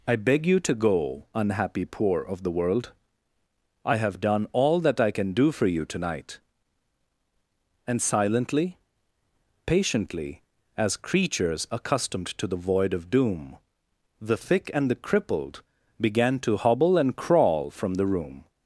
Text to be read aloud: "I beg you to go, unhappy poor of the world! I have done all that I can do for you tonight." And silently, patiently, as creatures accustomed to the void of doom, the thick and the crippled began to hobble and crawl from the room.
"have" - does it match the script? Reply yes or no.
yes